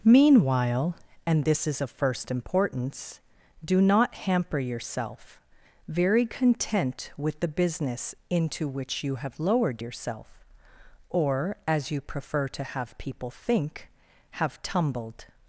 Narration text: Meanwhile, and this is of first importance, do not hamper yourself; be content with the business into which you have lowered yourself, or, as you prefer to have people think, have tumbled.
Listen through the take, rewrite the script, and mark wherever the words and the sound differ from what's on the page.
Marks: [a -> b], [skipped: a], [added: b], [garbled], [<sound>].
Meanwhile, and this is of first importance, do not hamper yourself; [be -> very] content with the business into which you have lowered yourself, or, as you prefer to have people think, have tumbled.